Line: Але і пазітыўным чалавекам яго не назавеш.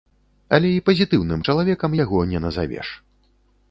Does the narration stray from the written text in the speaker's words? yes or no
no